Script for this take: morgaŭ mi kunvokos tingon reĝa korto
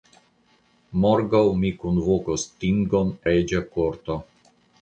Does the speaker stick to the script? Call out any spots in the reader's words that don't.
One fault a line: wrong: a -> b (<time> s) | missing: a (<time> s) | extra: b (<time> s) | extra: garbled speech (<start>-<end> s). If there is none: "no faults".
no faults